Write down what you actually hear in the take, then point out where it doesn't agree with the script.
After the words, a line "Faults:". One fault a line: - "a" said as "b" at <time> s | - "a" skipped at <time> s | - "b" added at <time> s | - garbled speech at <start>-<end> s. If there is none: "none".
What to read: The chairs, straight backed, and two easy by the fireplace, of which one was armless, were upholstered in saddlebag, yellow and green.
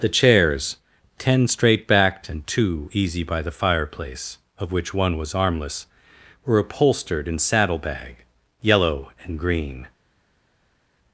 The chairs, ten straight backed, and two easy by the fireplace, of which one was armless, were upholstered in saddlebag, yellow and green.
Faults:
- "ten" added at 1.2 s